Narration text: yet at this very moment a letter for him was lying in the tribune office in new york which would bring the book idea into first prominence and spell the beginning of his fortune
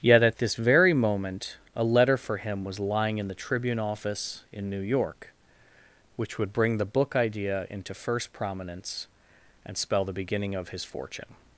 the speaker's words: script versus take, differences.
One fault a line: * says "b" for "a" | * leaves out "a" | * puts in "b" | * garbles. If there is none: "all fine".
all fine